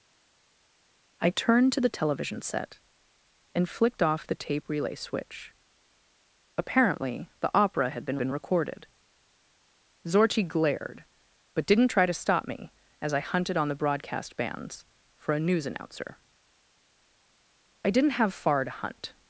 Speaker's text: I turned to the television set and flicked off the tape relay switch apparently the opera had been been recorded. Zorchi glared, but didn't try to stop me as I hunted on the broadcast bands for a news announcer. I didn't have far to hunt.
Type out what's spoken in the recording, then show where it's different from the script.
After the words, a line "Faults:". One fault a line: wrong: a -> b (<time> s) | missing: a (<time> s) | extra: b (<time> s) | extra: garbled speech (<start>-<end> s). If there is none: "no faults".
I turned to the television set and flicked off the tape relay switch apparently the opera had been been recorded. Zorchi glared, but didn't try to stop me as I hunted on the broadcast bands for a news announcer. I didn't have far to hunt.
Faults:
no faults